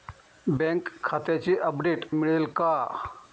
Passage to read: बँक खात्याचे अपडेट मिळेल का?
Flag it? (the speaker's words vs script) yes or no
no